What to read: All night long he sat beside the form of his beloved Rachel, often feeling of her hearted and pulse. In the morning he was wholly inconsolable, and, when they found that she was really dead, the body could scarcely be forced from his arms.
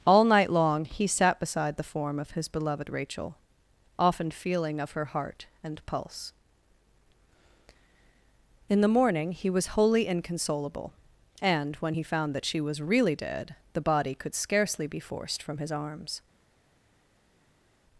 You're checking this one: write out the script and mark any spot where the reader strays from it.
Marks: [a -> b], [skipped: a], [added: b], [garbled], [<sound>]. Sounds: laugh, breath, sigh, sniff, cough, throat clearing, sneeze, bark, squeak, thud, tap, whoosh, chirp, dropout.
All night long he sat beside the form of his beloved Rachel, often feeling of her [hearted -> heart] and pulse. In the morning he was wholly inconsolable, and, when [they -> he] found that she was really dead, the body could scarcely be forced from his arms.